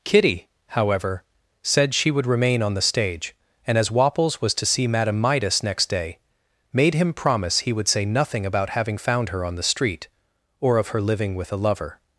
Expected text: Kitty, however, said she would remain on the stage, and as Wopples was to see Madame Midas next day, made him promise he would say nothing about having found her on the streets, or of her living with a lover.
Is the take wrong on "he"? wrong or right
right